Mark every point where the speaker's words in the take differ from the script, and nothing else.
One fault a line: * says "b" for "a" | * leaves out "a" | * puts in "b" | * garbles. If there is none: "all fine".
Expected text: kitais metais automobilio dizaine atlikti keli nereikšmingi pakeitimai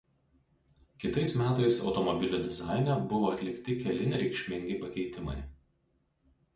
* puts in "buvo"